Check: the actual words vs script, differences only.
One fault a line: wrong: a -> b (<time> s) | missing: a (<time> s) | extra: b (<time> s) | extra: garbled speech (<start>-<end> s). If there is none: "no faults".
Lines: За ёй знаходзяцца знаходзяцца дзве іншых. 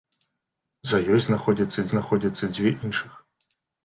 no faults